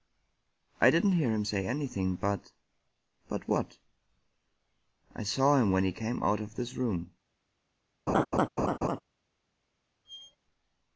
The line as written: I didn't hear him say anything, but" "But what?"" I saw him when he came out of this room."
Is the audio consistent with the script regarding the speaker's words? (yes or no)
yes